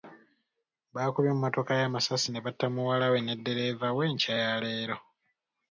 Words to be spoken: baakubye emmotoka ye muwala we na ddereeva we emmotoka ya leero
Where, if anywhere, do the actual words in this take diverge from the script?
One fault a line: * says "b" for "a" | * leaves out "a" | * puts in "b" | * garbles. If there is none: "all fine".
* puts in "amasasi ne batta"
* says "ne" for "na"
* says "enkya" for "emmotoka"